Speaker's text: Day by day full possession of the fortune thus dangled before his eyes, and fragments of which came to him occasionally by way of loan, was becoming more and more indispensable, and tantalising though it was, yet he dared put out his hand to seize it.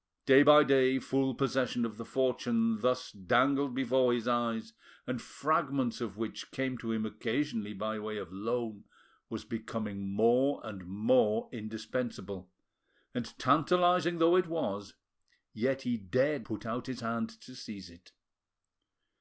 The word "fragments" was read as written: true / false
true